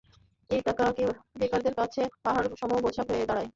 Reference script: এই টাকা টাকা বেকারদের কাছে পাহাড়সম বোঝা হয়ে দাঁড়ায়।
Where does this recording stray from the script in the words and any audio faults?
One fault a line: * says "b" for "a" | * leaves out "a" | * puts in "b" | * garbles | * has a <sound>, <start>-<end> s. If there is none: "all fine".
* leaves out "টাকা"